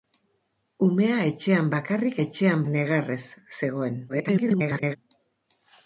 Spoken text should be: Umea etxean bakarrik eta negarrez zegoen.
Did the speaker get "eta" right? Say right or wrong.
wrong